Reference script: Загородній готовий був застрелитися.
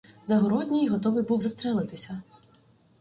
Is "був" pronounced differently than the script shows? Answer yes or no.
no